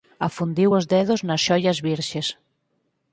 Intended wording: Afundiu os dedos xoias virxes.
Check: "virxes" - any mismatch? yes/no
no